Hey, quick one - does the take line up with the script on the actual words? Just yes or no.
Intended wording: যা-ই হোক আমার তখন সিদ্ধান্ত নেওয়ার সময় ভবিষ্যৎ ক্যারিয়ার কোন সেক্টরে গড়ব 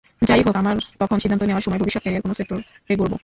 yes